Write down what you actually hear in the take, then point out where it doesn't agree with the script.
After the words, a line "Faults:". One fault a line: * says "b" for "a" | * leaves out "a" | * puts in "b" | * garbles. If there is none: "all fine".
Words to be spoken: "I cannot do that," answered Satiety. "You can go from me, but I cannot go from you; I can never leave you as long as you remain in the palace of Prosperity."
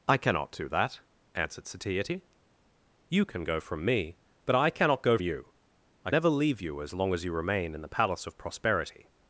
"I cannot do that," answered Satiety. "You can go from me, but I cannot go you; I never leave you as long as you remain in the palace of Prosperity."
Faults:
* leaves out "from"
* leaves out "can"